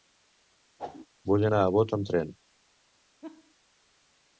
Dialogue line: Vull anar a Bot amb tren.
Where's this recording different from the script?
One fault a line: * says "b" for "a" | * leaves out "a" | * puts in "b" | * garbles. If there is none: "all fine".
all fine